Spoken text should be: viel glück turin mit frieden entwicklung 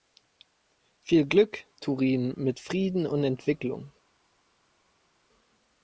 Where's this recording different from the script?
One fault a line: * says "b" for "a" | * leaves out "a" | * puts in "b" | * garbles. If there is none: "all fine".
* puts in "und"